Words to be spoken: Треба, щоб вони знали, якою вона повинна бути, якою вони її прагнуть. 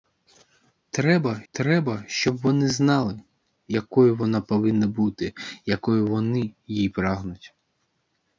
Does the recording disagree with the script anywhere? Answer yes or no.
yes